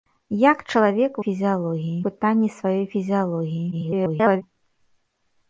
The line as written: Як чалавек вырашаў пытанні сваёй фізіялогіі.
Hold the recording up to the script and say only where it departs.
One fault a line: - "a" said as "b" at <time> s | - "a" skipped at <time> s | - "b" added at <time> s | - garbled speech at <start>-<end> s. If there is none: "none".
- "вырашаў" said as "фізіялогіі" at 1.3 s
- garbled speech at 3.7-4.4 s